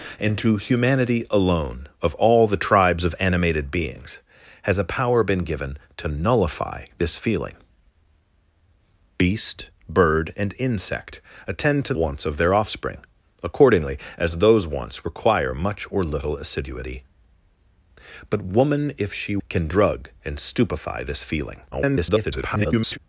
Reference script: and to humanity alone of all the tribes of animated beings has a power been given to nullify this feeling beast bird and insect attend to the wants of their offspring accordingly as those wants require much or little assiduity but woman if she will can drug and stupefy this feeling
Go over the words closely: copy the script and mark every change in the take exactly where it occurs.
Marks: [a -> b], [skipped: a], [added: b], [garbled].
and to humanity alone of all the tribes of animated beings has a power been given to nullify this feeling beast bird and insect attend to [skipped: the] wants of their offspring accordingly as those wants require much or little assiduity but woman if she [skipped: will] can drug and stupefy this feeling [garbled]